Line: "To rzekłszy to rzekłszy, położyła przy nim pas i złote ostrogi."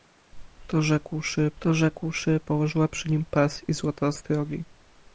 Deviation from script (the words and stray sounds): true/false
false